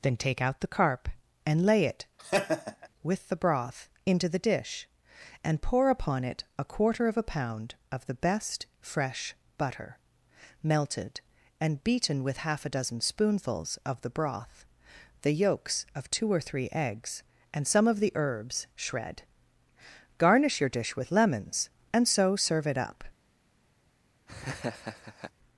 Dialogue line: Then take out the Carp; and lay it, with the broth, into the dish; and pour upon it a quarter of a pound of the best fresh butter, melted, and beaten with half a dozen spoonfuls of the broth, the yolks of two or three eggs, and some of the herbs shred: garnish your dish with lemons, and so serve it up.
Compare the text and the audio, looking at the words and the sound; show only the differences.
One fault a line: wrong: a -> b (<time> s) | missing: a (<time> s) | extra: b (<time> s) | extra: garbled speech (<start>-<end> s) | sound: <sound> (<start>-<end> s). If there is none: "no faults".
sound: laugh (2.2-2.9 s)
sound: laugh (24.3-25.3 s)